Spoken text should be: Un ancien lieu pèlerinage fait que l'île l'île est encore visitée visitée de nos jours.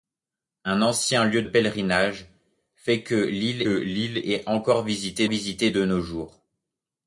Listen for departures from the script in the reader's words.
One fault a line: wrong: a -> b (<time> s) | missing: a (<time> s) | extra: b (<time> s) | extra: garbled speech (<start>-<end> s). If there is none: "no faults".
no faults